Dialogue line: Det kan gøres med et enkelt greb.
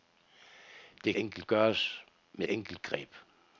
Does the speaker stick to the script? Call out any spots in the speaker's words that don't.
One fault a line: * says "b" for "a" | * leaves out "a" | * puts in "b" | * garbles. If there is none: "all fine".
* says "enkelt" for "kan"
* leaves out "et"